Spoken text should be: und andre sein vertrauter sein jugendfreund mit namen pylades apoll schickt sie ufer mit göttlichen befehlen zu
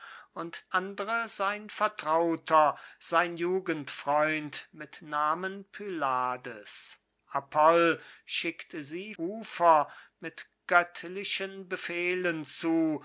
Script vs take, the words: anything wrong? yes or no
no